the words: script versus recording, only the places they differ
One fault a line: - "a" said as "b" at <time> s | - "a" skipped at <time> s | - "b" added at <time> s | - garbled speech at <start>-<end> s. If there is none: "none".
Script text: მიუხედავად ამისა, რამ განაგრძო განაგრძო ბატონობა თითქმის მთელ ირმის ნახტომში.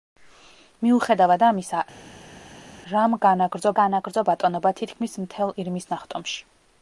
none